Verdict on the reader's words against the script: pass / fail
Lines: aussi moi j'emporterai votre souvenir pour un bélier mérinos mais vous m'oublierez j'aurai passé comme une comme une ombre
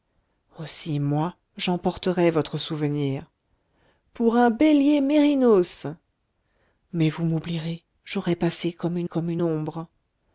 pass